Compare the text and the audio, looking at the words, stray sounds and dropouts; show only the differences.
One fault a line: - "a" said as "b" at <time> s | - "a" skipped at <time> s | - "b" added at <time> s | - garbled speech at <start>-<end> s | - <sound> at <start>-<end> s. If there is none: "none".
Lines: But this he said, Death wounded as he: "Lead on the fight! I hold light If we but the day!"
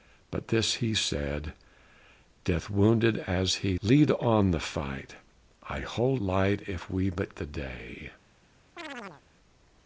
- chirp at 8.8-9.2 s